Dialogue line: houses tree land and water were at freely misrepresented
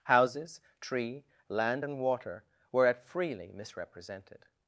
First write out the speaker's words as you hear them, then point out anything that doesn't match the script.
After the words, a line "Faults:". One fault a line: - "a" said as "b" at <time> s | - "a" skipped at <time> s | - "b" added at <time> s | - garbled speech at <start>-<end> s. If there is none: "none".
houses tree land and water were at freely misrepresented
Faults:
none